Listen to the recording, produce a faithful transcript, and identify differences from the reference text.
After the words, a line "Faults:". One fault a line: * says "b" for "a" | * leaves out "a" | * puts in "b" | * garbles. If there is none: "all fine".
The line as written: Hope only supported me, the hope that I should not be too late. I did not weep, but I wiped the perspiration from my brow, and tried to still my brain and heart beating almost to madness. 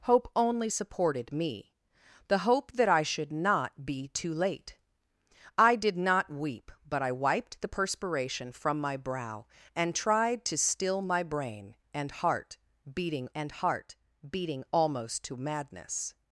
Hope only supported me, the hope that I should not be too late. I did not weep, but I wiped the perspiration from my brow, and tried to still my brain and heart beating and heart beating almost to madness.
Faults:
* puts in "and heart beating"